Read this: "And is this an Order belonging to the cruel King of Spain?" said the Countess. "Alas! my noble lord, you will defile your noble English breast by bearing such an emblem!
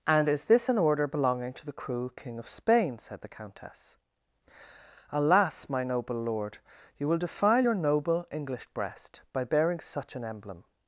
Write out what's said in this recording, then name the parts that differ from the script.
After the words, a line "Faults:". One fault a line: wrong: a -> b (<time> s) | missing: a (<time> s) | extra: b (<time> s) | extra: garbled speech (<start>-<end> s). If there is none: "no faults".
"And is this an Order belonging to the cruel King of Spain?" said the Countess. "Alas! my noble lord, you will defile your noble English breast by bearing such an emblem!
Faults:
no faults